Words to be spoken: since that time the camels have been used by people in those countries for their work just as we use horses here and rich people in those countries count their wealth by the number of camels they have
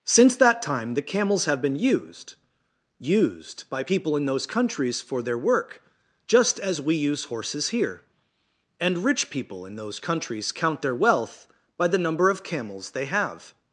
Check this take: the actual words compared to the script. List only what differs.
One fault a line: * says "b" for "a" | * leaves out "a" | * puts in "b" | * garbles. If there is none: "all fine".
* puts in "used"